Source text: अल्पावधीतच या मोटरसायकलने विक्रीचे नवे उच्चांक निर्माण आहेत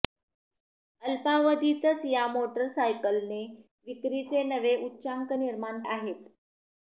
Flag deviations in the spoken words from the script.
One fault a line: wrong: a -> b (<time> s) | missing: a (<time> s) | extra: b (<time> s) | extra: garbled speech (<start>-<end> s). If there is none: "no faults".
no faults